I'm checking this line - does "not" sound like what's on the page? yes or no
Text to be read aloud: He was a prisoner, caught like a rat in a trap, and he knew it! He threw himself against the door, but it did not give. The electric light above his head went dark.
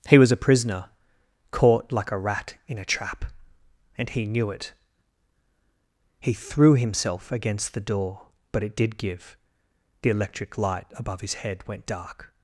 no